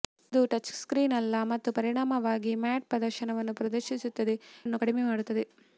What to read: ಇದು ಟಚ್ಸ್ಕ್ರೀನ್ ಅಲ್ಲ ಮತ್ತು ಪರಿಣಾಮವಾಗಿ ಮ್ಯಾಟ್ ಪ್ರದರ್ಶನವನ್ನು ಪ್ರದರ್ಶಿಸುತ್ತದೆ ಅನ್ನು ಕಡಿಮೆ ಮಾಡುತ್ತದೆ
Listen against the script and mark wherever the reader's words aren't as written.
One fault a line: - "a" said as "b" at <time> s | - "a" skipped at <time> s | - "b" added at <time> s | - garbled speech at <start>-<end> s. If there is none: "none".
none